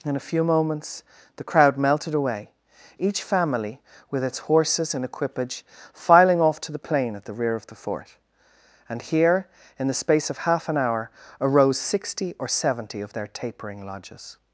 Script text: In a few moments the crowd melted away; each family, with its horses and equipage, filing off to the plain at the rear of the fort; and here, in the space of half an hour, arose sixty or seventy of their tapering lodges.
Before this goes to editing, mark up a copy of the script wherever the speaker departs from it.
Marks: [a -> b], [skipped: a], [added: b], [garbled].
In a few moments the crowd melted away; each family, with its horses and equipage, filing off to the plain at the rear of the fort; and here, in the space of half an hour, arose sixty or seventy of their tapering lodges.